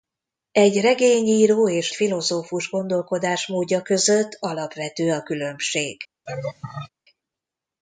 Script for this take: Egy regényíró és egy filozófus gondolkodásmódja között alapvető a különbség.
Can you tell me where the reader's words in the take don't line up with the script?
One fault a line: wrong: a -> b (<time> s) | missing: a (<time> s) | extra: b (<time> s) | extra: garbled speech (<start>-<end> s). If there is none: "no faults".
missing: egy (1.9 s)